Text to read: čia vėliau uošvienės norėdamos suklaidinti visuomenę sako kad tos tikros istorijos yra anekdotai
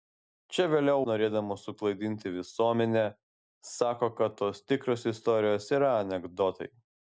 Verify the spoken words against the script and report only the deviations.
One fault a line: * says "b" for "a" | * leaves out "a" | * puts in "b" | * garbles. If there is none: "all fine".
* leaves out "uošvienės"